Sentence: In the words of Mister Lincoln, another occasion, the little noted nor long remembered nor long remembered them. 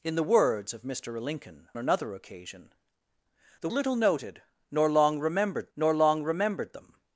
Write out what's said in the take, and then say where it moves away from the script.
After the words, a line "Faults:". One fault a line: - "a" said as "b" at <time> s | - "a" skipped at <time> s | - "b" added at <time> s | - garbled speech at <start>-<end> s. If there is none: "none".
In the words of Mister Lincoln, another occasion, the little noted nor long remembered nor long remembered them.
Faults:
none